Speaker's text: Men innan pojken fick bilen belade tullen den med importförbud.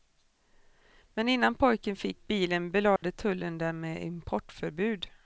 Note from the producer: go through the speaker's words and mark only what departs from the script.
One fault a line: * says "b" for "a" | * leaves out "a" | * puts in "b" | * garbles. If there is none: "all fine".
all fine